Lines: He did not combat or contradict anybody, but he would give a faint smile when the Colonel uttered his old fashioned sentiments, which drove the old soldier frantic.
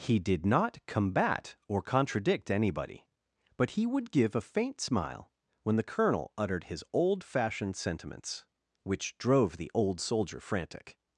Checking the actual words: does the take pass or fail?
pass